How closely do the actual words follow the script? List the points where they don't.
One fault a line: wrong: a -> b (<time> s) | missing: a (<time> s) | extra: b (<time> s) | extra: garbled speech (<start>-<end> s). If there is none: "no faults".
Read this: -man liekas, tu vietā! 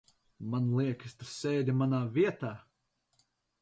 extra: sēdi manā (1.3 s)